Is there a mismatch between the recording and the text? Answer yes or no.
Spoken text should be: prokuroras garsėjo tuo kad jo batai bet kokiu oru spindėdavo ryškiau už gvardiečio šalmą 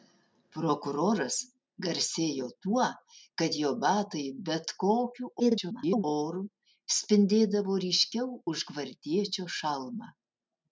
yes